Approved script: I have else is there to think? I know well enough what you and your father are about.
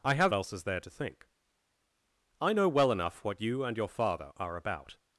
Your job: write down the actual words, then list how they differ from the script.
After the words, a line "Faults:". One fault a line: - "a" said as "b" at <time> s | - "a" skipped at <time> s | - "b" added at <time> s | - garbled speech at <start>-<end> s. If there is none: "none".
I have else is there to think? I know well enough what you and your father are about.
Faults:
none